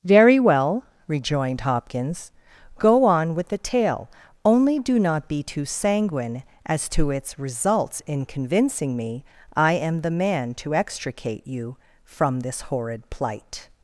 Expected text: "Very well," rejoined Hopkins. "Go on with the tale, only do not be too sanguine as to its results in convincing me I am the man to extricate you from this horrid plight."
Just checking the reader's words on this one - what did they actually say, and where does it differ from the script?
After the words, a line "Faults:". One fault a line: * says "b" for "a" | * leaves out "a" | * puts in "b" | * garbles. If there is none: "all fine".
"Very well," rejoined Hopkins. "Go on with the tale, only do not be too sanguine as to its results in convincing me I am the man to extricate you from this horrid plight."
Faults:
all fine